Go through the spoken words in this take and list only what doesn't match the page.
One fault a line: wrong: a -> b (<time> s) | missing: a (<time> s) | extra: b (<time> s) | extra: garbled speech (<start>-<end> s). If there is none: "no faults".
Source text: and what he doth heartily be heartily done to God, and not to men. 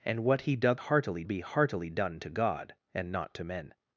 no faults